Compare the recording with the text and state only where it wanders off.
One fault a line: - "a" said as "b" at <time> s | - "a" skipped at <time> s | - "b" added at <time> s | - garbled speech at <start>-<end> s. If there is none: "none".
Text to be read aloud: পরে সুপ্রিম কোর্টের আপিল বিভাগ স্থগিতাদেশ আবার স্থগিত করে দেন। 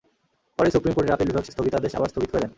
none